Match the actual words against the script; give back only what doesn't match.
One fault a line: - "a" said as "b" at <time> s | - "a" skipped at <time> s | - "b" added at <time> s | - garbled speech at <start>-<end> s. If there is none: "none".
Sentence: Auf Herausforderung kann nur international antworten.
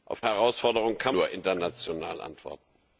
none